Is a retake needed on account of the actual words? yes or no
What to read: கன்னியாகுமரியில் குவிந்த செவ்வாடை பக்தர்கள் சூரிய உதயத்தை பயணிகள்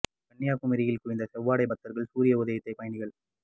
no